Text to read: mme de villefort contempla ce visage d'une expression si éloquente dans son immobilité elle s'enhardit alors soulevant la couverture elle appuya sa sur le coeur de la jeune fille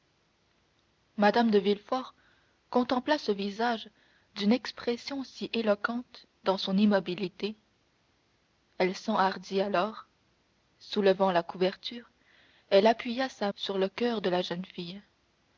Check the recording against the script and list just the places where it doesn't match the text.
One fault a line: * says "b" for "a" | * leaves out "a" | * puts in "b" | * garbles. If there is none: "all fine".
all fine